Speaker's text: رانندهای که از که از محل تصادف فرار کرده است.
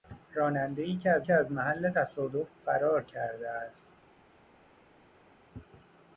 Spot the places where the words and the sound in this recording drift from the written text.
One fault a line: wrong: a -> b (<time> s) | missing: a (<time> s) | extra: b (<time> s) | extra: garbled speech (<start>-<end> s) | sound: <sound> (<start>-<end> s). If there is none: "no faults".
no faults